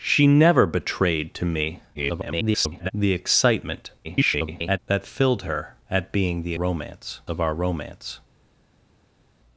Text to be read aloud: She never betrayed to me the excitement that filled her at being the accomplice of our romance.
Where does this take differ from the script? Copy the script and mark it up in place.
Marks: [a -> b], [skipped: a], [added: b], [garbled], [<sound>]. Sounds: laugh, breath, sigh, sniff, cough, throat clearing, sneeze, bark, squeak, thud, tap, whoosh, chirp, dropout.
She never betrayed to me [garbled] the excitement [garbled] that filled her at being the [accomplice -> romance] of our romance.